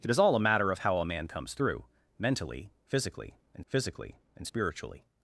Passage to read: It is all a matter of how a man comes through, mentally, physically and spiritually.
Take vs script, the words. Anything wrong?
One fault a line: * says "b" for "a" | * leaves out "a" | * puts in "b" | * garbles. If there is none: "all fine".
* puts in "physically and"